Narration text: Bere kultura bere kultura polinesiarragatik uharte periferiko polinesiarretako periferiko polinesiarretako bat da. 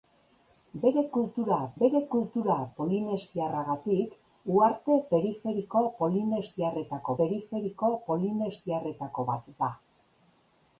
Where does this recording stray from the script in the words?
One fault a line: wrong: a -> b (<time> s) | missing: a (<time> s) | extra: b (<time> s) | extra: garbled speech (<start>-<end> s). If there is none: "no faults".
no faults